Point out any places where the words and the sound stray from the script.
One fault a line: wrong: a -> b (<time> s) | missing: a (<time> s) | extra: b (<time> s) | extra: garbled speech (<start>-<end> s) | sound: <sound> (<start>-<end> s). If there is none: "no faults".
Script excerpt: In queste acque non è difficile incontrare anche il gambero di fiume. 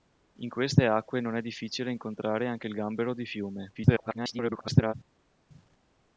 extra: garbled speech (3.7-4.9 s)